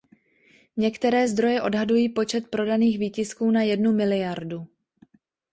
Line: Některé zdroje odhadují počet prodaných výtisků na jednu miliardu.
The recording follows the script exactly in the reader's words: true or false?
true